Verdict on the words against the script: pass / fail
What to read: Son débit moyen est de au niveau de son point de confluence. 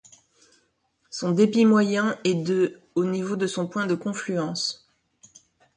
pass